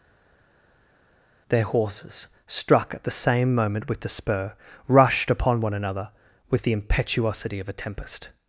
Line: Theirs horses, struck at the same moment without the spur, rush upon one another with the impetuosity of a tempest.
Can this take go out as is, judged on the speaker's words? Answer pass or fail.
fail